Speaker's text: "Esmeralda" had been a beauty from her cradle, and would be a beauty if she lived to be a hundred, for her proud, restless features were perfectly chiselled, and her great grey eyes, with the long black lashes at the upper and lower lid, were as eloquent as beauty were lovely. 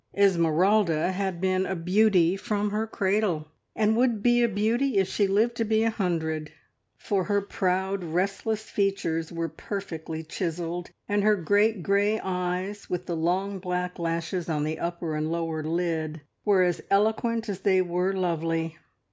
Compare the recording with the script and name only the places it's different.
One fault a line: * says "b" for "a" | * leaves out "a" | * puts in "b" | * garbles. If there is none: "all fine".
* says "on" for "at"
* says "they" for "beauty"